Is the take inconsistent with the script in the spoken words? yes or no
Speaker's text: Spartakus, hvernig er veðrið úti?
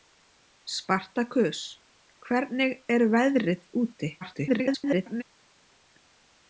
yes